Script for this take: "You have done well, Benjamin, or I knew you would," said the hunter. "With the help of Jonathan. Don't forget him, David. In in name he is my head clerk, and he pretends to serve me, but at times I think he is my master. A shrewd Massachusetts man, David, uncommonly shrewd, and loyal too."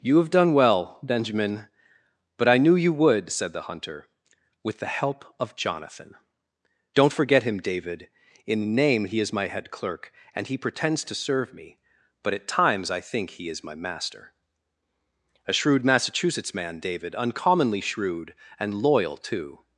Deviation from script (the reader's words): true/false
true